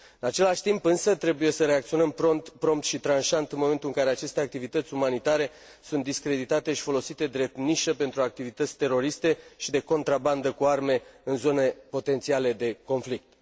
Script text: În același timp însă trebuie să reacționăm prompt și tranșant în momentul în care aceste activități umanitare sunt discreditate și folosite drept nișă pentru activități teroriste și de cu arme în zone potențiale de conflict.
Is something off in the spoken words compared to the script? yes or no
yes